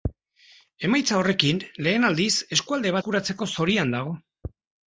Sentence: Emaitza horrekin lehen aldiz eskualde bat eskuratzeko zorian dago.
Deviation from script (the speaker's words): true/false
true